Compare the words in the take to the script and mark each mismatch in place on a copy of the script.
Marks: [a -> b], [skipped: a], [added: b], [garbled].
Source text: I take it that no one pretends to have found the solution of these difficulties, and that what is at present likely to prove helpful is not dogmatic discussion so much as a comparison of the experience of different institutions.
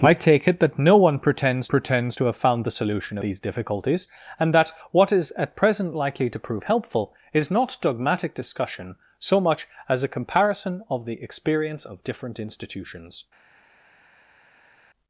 I take it that no one pretends [added: pretends] to have found the solution [skipped: of] these difficulties, and that what is at present likely to prove helpful is not dogmatic discussion so much as a comparison of the experience of different institutions.